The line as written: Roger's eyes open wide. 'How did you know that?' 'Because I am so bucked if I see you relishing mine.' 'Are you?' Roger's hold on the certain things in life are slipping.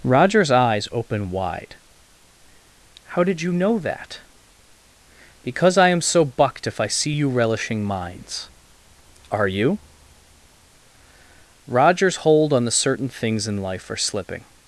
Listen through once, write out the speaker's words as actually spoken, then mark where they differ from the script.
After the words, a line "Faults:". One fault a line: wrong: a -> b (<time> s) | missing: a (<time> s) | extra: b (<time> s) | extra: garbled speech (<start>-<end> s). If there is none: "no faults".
Roger's eyes open wide. 'How did you know that?' 'Because I am so bucked if I see you relishing mines.' 'Are you?' Roger's hold on the certain things in life are slipping.
Faults:
wrong: mine -> mines (7.8 s)